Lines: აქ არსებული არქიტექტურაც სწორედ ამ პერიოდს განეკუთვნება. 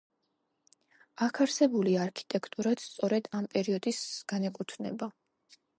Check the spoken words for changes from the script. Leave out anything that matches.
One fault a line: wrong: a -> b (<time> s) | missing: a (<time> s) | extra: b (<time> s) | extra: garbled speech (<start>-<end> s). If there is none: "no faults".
no faults